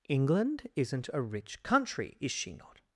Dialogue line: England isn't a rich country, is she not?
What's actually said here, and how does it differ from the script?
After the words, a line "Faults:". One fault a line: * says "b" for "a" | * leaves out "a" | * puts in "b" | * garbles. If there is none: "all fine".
England isn't a rich country, is she not?
Faults:
all fine